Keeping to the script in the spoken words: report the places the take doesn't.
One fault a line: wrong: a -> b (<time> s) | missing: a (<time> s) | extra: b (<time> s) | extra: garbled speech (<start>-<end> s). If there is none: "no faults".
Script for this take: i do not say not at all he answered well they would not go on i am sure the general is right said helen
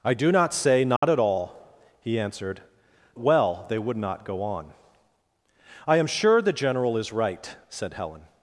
no faults